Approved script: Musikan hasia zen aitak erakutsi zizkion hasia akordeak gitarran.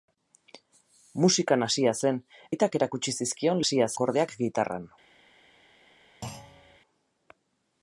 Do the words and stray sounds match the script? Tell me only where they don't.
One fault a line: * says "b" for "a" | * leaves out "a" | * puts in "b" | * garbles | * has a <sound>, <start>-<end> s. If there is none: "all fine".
* has a thud, 6.2-6.8 s